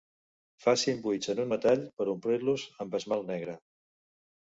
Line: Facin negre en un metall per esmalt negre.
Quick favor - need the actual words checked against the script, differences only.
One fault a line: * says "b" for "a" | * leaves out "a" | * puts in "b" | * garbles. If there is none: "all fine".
* says "buits" for "negre"
* puts in "omplir los amb"